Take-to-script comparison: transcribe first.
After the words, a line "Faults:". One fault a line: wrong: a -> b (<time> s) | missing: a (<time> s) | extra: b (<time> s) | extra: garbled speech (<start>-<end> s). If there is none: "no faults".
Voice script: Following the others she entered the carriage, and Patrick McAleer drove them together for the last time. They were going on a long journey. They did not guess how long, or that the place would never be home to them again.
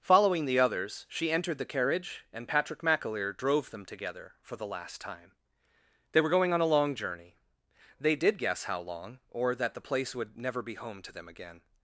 Following the others she entered the carriage, and Patrick McAleer drove them together for the last time. They were going on a long journey. They did guess how long, or that the place would never be home to them again.
Faults:
missing: not (8.4 s)